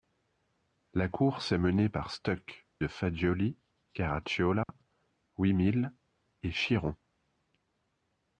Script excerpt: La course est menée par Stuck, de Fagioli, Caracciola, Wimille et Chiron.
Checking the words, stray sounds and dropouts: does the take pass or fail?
fail